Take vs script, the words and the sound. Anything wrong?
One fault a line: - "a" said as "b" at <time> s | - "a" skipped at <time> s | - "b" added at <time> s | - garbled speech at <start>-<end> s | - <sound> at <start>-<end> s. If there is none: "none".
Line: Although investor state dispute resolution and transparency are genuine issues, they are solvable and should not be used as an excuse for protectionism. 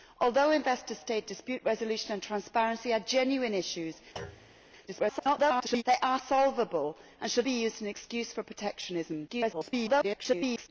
- thud at 4.2-4.6 s
- garbled speech at 4.9-5.8 s
- "not" skipped at 7.5 s
- garbled speech at 9.3-10.7 s